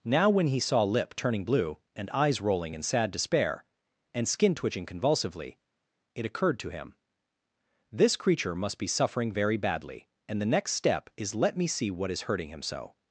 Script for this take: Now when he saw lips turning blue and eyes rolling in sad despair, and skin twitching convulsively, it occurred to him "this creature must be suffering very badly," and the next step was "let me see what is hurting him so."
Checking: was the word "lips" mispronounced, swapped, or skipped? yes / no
yes